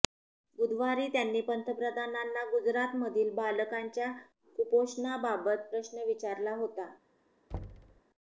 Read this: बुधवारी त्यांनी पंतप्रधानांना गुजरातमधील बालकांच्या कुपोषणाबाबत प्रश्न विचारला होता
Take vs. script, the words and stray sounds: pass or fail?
fail